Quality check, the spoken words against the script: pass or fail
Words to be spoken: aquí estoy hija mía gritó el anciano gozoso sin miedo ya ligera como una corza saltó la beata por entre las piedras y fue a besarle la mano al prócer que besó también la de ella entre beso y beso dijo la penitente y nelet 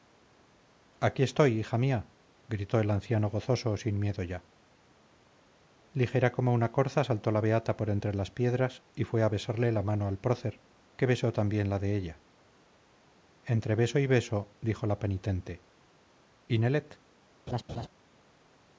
pass